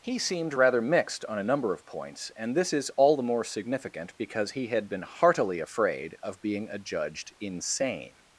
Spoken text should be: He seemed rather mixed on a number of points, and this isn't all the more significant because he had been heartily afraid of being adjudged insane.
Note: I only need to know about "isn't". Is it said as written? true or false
false